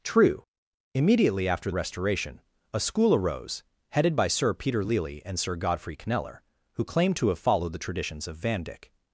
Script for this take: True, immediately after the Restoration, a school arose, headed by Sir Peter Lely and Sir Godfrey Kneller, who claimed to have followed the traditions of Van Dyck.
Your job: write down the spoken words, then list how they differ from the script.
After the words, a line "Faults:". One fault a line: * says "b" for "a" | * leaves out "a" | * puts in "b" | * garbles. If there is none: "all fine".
True, immediately after Restoration, a school arose, headed by Sir Peter Lely and Sir Godfrey Kneller, who claimed to have followed the traditions of Van Dyck.
Faults:
* leaves out "the"